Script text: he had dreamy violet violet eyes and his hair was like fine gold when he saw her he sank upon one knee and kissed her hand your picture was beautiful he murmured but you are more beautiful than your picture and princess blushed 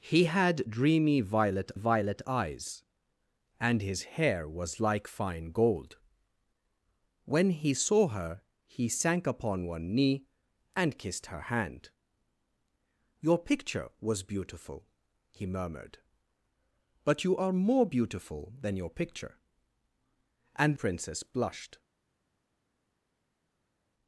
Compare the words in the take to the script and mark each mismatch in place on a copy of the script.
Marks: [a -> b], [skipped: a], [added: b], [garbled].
he had dreamy violet violet eyes and his hair was like fine gold when he saw her he sank upon one knee and kissed her hand your picture was beautiful he murmured but you are more beautiful than your picture and princess blushed